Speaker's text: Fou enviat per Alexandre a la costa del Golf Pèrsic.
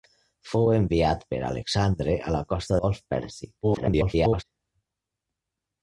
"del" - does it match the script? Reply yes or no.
no